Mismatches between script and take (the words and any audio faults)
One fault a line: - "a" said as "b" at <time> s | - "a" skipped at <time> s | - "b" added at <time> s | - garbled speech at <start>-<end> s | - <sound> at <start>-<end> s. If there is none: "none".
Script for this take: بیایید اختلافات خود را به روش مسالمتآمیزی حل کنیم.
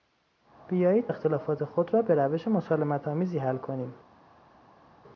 none